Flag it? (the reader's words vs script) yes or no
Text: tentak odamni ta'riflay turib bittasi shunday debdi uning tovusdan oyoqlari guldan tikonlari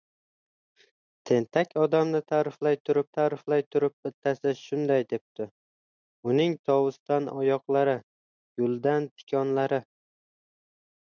yes